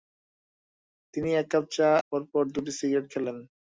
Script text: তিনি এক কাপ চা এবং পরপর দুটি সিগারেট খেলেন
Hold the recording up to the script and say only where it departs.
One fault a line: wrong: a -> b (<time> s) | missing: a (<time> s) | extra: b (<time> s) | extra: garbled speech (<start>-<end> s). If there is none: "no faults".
missing: এবং (1.9 s)